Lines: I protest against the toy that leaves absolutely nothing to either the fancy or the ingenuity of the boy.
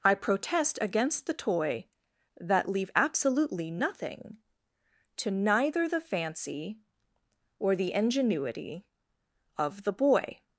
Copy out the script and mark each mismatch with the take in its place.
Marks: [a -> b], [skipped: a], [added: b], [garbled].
I protest against the toy that [leaves -> leave] absolutely nothing to [either -> neither] the fancy or the ingenuity of the boy.